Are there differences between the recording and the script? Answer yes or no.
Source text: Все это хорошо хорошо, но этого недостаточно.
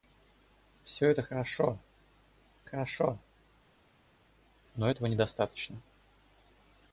no